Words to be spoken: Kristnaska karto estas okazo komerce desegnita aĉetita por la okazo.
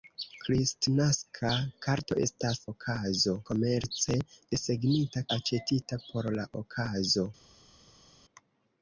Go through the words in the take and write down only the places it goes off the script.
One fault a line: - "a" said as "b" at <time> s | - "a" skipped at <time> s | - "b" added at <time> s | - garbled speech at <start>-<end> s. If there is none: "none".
none